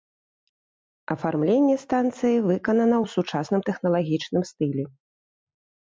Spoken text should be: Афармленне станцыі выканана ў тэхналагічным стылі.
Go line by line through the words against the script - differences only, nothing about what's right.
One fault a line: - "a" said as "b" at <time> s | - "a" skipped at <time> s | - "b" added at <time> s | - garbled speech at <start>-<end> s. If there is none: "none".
- "сучасным" added at 3.2 s